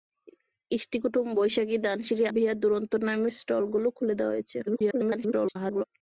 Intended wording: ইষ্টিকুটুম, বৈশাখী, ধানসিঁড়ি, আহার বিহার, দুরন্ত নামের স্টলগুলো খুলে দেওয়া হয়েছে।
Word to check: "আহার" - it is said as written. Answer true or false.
false